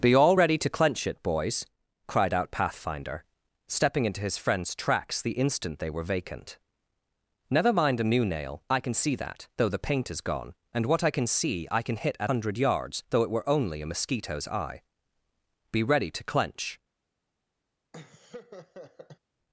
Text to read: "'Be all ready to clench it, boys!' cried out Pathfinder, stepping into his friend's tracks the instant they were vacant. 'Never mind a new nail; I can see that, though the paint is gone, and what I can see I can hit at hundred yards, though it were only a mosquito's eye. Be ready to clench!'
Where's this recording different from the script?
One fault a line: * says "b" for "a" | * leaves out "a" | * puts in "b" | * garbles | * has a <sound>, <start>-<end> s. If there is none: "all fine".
* has a laugh, 17.9-19.2 s